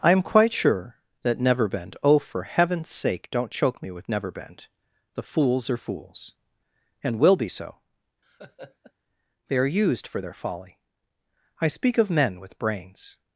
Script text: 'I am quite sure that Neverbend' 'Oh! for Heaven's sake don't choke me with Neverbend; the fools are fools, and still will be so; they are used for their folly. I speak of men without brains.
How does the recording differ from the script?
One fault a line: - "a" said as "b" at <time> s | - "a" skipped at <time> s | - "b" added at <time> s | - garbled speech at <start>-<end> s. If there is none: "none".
- "still" skipped at 7.2 s
- "without" said as "with" at 12.4 s